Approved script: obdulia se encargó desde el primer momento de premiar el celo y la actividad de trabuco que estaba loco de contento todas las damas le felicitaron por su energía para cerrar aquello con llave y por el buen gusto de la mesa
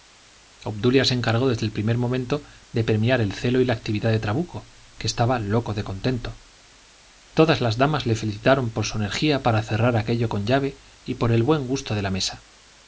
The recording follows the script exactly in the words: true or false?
true